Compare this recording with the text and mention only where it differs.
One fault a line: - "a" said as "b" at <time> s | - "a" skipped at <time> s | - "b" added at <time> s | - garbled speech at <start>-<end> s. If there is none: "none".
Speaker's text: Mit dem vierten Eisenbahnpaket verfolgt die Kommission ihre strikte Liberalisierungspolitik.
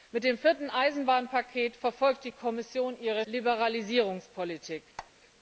- "strikte" skipped at 3.2 s